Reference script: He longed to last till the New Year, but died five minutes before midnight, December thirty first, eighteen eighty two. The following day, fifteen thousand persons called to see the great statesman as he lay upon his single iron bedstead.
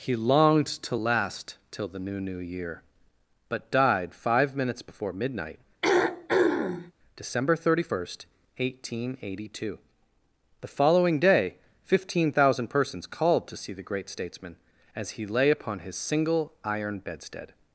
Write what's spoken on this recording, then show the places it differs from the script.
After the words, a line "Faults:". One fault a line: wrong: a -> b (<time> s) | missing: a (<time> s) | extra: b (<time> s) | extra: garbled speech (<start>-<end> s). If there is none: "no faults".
He longed to last till the New New Year, but died five minutes before midnight, December thirty first, eighteen eighty two. The following day, fifteen thousand persons called to see the great statesman as he lay upon his single iron bedstead.
Faults:
extra: New (2.2 s)